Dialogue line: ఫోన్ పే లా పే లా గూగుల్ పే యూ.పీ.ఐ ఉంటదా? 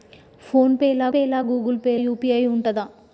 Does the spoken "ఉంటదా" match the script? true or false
true